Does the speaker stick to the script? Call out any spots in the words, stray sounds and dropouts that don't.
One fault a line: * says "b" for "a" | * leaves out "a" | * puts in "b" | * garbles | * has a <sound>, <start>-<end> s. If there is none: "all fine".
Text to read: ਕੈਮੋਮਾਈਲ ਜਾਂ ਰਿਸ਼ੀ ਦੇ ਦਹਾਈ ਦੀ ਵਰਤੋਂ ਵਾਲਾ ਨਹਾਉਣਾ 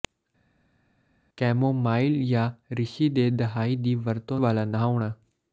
all fine